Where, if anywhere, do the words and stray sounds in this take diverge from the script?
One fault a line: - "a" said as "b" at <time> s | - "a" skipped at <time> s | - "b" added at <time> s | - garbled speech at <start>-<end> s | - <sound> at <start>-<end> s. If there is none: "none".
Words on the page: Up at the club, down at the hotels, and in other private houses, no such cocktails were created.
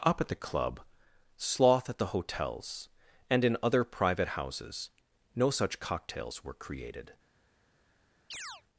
- "down" said as "sloth" at 1.4 s
- chirp at 8.3-8.6 s